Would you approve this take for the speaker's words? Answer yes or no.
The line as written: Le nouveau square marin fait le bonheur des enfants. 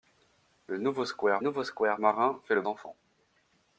no